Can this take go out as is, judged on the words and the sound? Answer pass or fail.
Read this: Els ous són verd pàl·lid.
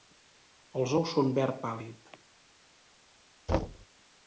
fail